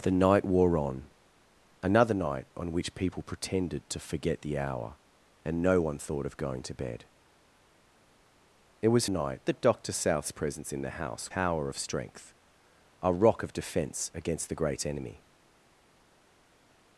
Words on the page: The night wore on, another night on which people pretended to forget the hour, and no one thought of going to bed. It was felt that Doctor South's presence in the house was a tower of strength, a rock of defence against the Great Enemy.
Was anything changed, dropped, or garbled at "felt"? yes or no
yes